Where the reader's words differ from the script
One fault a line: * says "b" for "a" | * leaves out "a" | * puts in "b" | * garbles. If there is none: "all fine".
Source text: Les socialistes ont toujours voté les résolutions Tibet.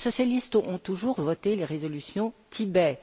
all fine